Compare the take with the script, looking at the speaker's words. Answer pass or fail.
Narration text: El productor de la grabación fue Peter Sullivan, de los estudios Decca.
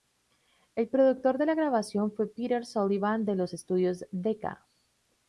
pass